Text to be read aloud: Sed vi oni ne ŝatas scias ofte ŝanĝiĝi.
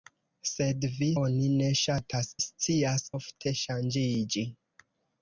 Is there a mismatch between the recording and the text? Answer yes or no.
no